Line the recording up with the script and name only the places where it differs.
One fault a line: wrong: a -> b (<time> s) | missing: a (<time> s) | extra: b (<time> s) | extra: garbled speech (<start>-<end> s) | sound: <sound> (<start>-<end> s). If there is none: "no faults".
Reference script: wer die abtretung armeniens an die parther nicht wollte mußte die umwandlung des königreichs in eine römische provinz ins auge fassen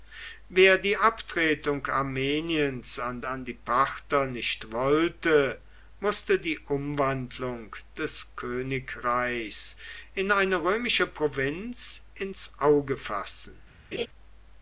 extra: an (3.2 s)
sound: laugh (13.9-14.1 s)